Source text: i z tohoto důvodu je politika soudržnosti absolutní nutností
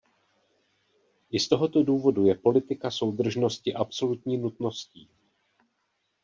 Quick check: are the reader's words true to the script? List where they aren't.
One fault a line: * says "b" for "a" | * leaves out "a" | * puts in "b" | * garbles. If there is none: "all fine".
all fine